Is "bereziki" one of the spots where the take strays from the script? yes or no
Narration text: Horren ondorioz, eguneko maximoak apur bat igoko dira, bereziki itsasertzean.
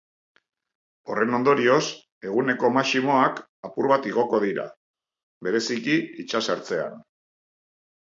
no